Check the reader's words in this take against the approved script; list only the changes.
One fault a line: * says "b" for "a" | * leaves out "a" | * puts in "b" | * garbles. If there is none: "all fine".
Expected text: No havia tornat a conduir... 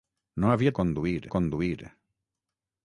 * says "conduir" for "tornat"